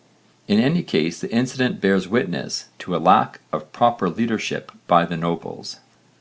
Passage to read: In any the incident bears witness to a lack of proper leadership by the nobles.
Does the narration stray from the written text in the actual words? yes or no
yes